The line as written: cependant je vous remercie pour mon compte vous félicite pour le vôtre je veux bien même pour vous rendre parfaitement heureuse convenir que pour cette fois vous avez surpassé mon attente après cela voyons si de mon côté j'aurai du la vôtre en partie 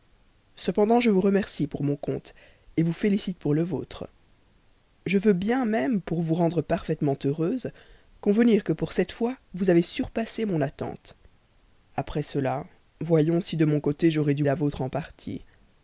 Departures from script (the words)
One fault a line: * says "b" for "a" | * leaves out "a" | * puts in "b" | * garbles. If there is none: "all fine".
all fine